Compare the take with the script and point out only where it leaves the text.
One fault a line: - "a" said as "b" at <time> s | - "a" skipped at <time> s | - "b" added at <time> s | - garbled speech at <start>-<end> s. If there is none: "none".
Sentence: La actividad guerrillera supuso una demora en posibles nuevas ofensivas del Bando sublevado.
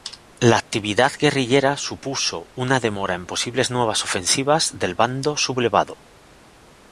none